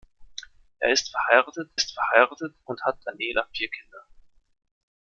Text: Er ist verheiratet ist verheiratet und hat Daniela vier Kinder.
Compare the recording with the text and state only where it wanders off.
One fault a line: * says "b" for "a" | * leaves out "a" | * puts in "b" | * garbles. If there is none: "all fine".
all fine